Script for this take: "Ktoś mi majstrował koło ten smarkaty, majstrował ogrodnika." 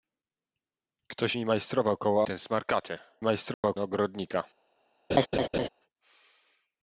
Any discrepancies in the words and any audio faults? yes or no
yes